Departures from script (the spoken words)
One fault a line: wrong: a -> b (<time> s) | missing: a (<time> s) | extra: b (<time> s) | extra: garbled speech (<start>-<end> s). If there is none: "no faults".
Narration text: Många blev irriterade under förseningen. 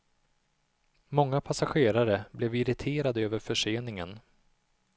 extra: passagerare (1.4 s)
wrong: under -> över (3.2 s)